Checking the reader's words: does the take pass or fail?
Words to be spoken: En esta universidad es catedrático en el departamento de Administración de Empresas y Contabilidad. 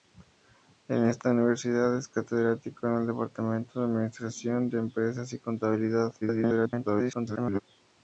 fail